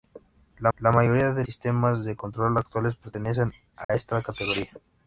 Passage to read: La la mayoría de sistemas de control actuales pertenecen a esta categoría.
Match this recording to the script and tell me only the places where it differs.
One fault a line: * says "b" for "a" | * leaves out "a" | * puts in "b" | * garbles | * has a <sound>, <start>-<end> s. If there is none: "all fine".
* has a dropout, 3.8-3.9 s